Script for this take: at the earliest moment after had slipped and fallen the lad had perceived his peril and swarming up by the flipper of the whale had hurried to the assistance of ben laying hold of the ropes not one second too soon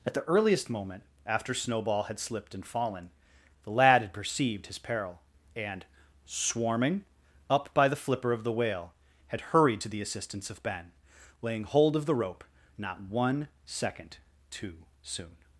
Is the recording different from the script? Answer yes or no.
yes